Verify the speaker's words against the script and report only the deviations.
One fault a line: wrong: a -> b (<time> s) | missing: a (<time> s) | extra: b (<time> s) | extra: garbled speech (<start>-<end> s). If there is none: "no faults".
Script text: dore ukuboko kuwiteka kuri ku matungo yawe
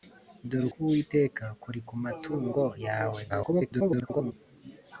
missing: ukuboko (0.7 s)
extra: garbled speech (3.3-4.3 s)